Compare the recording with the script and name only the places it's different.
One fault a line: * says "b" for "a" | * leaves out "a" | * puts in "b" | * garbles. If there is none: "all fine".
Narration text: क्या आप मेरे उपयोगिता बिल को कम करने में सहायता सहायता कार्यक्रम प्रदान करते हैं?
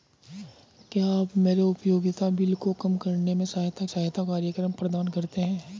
all fine